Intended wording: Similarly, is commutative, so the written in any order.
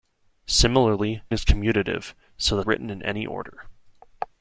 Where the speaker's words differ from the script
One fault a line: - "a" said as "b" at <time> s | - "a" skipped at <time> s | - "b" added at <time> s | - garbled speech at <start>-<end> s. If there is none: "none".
none